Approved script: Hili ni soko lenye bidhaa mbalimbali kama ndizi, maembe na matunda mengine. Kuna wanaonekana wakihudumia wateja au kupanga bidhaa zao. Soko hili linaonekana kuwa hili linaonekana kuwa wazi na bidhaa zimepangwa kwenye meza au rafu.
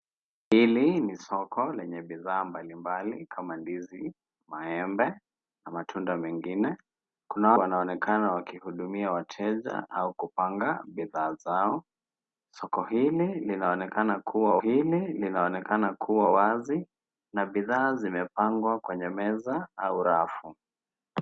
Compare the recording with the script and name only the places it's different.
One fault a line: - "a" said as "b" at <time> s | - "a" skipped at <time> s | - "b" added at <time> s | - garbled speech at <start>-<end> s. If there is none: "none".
none